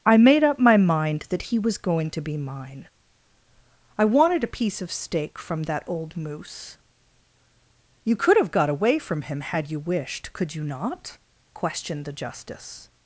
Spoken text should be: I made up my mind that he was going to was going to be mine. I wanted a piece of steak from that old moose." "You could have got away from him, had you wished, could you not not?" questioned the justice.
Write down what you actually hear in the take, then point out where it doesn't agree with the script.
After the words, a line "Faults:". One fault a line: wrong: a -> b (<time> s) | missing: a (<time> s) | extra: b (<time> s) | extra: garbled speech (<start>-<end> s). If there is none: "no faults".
I made up my mind that he was going to be mine. I wanted a piece of steak from that old moose." "You could have got away from him, had you wished, could you not?" questioned the justice.
Faults:
missing: was going to (2.2 s)
missing: not (11.2 s)